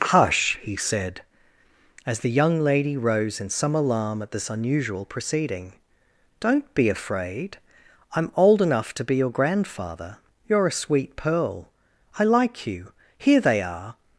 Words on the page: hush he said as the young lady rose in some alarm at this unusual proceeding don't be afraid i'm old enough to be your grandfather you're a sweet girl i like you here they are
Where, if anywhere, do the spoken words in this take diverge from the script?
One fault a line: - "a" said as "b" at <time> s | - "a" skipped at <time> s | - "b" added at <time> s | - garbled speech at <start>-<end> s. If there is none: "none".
- "girl" said as "pearl" at 11.2 s